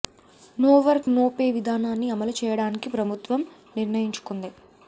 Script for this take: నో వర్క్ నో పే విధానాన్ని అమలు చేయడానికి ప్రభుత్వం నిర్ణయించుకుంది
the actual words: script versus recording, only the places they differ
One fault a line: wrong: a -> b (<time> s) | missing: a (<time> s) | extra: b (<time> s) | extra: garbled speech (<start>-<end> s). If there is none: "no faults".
no faults